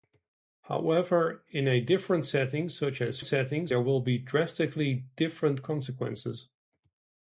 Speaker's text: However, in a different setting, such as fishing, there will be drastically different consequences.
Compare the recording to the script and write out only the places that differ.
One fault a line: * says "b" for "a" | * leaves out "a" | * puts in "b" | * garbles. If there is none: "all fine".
* says "setting" for "fishing"